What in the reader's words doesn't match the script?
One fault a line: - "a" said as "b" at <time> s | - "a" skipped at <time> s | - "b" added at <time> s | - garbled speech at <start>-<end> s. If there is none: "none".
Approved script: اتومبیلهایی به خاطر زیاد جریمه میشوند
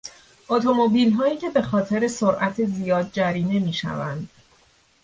- "که" added at 1.4 s
- "سرعت" added at 2.1 s